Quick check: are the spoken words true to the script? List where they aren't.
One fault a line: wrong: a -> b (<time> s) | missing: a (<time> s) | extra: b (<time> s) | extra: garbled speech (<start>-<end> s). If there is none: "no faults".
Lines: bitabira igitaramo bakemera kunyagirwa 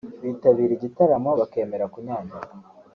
no faults